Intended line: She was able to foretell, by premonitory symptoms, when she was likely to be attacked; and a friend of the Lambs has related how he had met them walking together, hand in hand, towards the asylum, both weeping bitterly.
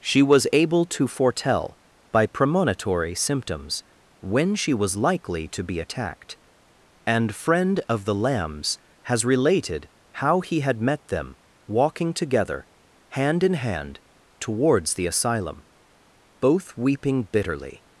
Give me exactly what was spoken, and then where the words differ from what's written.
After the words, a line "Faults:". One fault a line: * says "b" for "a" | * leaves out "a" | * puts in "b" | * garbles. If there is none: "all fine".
She was able to foretell, by premonitory symptoms, when she was likely to be attacked; and friend of the Lambs has related how he had met them walking together, hand in hand, towards the asylum, both weeping bitterly.
Faults:
* leaves out "a"